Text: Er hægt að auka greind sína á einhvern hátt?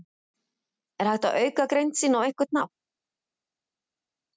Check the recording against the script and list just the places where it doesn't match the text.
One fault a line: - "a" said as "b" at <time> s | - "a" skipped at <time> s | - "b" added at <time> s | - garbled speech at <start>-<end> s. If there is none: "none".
none